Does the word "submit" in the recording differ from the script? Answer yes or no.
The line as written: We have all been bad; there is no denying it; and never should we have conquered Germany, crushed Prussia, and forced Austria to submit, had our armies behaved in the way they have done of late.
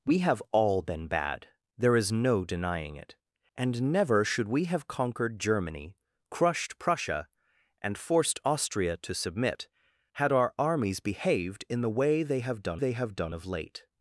no